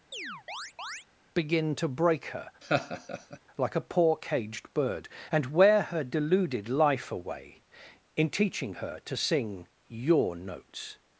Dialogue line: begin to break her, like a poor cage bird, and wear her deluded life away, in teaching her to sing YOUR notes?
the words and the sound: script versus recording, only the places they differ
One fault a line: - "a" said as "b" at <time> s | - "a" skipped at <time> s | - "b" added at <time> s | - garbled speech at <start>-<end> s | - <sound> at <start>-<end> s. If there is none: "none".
- chirp at 0.1-1.1 s
- laugh at 2.6-3.4 s
- "cage" said as "caged" at 4.2 s